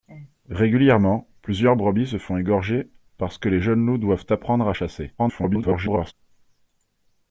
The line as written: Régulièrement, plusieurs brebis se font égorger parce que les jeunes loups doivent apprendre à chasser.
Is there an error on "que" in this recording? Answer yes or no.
no